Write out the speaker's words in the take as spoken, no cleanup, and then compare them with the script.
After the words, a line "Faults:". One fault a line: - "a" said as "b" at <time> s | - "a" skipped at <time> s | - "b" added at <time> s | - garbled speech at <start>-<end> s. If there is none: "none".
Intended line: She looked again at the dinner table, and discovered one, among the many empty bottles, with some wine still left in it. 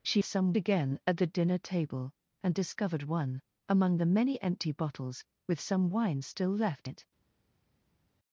She some again at the dinner table, and discovered one, among the many empty bottles, with some wine still left it.
Faults:
- "looked" said as "some" at 0.2 s
- "in" skipped at 6.9 s